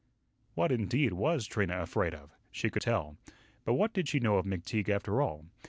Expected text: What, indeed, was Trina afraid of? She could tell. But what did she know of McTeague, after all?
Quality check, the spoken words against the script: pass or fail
pass